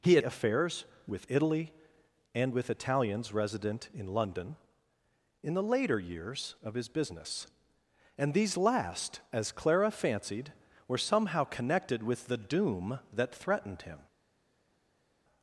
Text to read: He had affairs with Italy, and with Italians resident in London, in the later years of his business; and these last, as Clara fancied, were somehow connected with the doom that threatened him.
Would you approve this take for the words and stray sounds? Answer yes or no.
yes